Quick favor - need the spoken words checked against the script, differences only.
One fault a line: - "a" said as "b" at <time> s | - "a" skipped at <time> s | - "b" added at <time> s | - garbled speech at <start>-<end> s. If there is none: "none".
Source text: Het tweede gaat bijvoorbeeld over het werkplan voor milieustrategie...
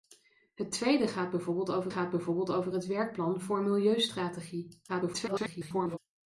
- "gaat bijvoorbeeld over" added at 1.9 s
- garbled speech at 4.9-6.0 s